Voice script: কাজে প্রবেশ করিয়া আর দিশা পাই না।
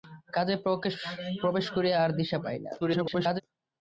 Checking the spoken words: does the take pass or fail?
fail